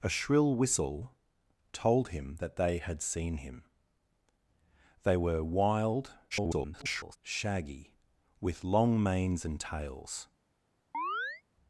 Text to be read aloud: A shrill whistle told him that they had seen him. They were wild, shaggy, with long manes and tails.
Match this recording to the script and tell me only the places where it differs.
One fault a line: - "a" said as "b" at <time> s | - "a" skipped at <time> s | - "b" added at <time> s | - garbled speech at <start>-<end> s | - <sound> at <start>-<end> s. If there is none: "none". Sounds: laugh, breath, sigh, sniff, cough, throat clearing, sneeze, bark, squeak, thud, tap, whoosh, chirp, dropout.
- garbled speech at 6.3-7.2 s
- chirp at 10.9-11.4 s